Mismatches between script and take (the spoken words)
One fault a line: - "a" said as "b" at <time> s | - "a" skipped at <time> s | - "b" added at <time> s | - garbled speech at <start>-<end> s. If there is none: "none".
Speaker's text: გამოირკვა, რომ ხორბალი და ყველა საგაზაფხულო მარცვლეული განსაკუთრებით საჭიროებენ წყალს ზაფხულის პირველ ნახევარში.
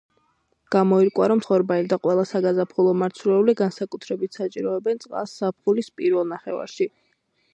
none